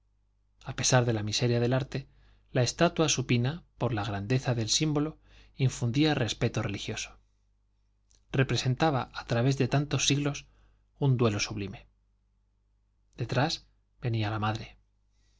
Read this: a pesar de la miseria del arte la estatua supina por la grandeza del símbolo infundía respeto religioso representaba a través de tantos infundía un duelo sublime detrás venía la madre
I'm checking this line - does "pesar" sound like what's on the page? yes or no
yes